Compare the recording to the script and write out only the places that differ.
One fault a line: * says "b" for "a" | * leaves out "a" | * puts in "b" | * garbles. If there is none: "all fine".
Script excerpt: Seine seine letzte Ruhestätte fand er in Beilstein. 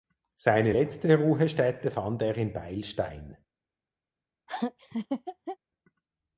* leaves out "seine"